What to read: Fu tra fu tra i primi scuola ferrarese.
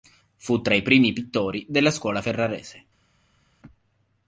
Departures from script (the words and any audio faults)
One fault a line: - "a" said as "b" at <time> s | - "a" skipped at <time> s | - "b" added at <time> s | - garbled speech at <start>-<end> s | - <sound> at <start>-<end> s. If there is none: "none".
- "fu tra i primi" said as "i primi pittori della" at 0.7 s